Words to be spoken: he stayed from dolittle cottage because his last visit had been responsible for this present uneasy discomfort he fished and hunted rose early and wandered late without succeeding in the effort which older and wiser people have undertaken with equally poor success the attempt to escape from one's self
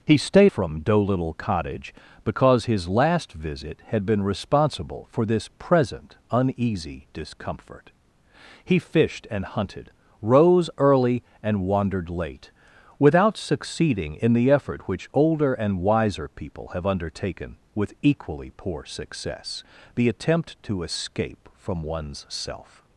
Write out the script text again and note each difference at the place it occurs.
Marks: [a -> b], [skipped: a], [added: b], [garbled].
he stayed from dolittle cottage because his last visit had been responsible for this present uneasy discomfort he fished and hunted rose early and wandered late without succeeding in the effort which older and wiser people have undertaken with equally poor success the attempt to escape from one's self